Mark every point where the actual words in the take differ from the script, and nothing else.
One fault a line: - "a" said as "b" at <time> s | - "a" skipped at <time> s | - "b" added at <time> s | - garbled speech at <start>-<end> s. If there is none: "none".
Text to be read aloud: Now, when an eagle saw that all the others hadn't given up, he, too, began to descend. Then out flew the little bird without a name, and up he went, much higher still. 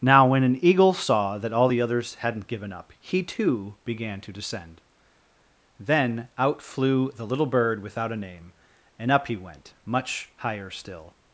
none